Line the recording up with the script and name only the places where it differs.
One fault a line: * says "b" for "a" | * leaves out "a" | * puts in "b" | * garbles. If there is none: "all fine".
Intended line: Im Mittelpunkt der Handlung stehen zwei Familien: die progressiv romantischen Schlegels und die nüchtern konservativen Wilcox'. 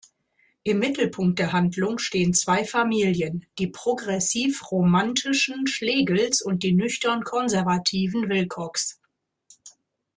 all fine